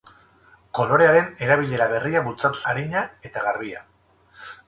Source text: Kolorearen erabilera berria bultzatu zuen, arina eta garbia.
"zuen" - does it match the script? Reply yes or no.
no